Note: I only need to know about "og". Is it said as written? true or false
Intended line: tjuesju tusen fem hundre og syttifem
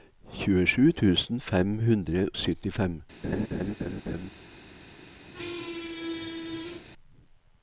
false